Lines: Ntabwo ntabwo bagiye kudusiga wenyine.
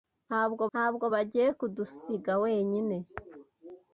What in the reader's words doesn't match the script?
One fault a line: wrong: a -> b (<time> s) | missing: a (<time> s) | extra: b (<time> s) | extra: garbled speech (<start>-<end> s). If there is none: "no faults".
no faults